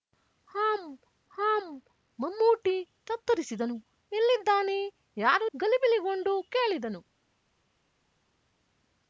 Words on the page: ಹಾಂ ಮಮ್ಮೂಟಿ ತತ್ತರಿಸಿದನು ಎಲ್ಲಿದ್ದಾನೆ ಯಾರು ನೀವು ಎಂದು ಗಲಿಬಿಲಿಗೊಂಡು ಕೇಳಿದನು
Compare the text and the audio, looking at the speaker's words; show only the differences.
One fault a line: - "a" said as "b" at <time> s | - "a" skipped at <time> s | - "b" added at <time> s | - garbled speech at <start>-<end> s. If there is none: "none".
- "ಹಾಂ" added at 1.3 s
- "ನೀವು ಎಂದು" skipped at 5.5 s